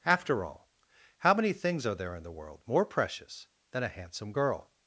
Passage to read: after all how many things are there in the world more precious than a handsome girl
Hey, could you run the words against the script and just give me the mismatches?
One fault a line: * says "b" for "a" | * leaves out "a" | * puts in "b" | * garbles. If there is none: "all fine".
all fine